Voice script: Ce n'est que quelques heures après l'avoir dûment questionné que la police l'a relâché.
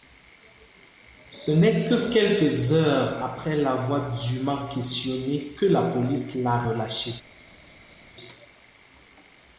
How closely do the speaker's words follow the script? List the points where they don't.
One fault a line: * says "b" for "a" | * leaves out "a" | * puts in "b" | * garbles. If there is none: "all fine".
all fine